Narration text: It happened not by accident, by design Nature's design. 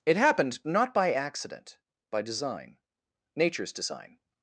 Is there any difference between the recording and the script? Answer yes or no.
no